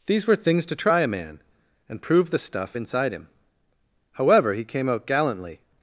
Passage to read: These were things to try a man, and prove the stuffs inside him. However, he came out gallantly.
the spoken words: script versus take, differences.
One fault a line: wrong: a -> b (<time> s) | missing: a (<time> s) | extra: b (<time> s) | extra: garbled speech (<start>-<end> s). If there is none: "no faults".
wrong: stuffs -> stuff (2.4 s)